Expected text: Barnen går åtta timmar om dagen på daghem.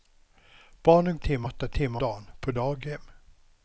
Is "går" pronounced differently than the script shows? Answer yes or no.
yes